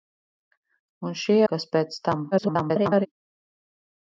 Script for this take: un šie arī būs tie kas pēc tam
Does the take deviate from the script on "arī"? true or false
true